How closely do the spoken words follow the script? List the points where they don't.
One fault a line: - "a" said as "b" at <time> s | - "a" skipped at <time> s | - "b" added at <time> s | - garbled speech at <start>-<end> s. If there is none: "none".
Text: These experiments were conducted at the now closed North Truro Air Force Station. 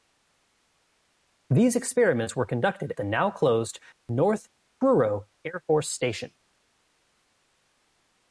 - "at" skipped at 2.9 s